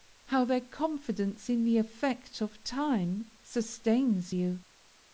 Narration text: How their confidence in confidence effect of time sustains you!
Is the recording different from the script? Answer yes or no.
yes